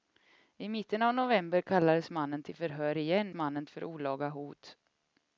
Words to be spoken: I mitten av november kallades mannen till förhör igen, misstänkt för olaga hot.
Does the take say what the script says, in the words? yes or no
no